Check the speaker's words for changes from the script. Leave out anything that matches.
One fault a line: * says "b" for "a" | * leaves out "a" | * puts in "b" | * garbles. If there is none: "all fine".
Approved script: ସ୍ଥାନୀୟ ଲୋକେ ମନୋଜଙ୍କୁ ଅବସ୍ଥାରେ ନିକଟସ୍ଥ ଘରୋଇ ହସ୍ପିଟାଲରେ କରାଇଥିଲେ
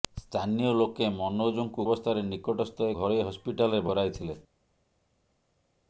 all fine